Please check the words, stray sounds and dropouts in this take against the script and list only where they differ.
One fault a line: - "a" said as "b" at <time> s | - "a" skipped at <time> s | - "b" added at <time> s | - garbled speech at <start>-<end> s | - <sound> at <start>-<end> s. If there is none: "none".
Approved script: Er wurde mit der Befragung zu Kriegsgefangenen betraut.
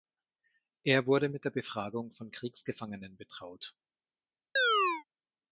- "zu" said as "von" at 2.1 s
- chirp at 4.6-5.0 s